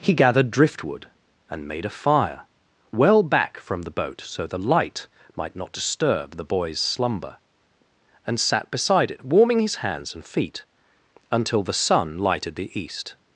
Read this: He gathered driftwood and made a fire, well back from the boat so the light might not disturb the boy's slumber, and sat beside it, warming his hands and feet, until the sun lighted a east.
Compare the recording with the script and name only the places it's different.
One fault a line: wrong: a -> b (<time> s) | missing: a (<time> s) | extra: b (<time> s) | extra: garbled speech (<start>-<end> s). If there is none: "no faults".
wrong: a -> the (12.6 s)